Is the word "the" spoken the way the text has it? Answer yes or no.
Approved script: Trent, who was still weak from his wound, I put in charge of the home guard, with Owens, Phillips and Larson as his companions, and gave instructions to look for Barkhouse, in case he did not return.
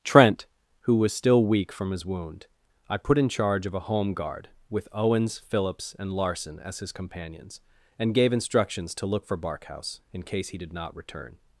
no